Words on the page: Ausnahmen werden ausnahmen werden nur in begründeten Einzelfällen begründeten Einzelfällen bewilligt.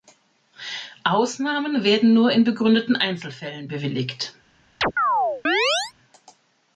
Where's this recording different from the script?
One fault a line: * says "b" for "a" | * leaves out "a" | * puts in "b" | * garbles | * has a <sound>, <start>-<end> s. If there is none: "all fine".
* leaves out "ausnahmen werden"
* leaves out "begründeten Einzelfällen"
* has a chirp, 4.8-5.9 s